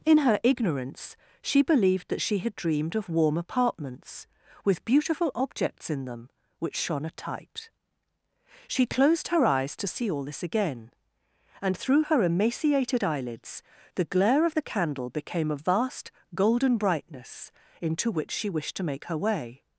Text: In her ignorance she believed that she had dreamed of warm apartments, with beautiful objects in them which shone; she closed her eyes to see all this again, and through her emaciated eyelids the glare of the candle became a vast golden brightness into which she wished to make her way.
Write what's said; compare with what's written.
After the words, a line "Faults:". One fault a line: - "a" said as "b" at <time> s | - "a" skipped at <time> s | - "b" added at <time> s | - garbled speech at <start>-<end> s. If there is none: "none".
In her ignorance she believed that she had dreamed of warm apartments, with beautiful objects in them which shone; a tight she closed her eyes to see all this again, and through her emaciated eyelids the glare of the candle became a vast golden brightness into which she wished to make her way.
Faults:
- "a tight" added at 7.0 s